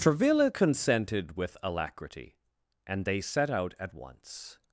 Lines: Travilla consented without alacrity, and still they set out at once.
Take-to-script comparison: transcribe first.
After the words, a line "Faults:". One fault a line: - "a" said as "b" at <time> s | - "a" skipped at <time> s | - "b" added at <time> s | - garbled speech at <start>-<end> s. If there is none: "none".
Travilla consented with alacrity, and they set out at once.
Faults:
- "without" said as "with" at 1.3 s
- "still" skipped at 3.0 s